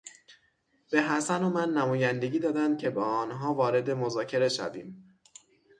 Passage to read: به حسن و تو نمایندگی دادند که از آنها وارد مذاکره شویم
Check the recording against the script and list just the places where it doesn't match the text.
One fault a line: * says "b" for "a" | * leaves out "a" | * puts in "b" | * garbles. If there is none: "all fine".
* says "من" for "تو"
* says "با" for "از"